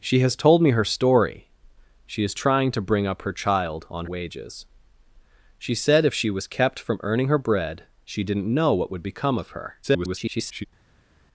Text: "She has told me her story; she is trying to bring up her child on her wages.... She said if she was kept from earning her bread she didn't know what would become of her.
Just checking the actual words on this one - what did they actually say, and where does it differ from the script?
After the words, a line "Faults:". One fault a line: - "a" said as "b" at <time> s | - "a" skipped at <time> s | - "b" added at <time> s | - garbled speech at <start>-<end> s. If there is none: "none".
"She has told me her story; she is trying to bring up her child on wages.... She said if she was kept from earning her bread she didn't know what would become of her. [garbled]
Faults:
- "her" skipped at 4.1 s
- garbled speech at 9.8-10.7 s